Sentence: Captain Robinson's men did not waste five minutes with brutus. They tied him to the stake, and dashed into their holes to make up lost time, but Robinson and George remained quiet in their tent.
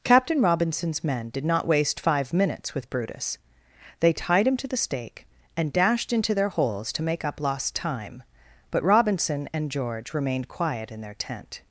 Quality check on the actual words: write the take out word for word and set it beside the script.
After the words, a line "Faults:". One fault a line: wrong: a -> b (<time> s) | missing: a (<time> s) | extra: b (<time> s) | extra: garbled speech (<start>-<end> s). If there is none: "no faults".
Captain Robinson's men did not waste five minutes with brutus. They tied him to the stake, and dashed into their holes to make up lost time, but Robinson and George remained quiet in their tent.
Faults:
no faults